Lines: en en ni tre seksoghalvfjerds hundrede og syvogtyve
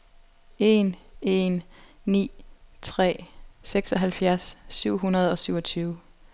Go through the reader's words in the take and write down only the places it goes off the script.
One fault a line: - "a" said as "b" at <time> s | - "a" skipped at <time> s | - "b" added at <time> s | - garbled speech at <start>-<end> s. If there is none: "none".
- "syv" added at 4.7 s